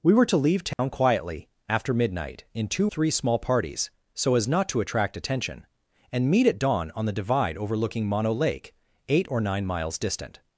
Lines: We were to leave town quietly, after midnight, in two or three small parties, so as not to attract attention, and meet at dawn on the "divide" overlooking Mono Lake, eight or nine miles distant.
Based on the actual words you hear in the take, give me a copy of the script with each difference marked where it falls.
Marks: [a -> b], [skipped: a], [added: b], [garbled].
We were to leave town quietly, after midnight, in two [skipped: or] three small parties, so as not to attract attention, and meet at dawn on the "divide" overlooking Mono Lake, eight or nine miles distant.